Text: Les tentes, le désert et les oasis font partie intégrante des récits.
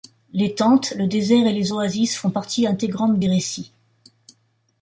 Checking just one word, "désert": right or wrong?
right